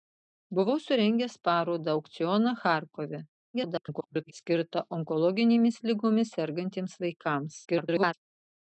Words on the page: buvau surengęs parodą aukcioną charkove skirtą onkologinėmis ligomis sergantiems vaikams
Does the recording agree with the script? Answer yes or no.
no